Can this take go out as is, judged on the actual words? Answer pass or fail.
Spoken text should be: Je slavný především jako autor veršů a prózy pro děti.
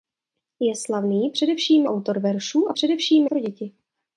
fail